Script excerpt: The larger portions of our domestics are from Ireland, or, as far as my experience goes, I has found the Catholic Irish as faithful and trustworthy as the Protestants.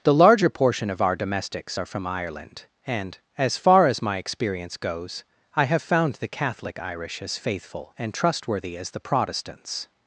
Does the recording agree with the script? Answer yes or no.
no